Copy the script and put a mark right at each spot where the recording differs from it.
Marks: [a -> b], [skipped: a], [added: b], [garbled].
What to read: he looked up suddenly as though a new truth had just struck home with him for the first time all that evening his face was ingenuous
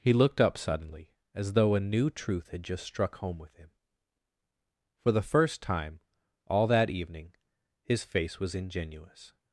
he looked up suddenly as though a new truth had just struck home with him for the first time all that evening his face was ingenuous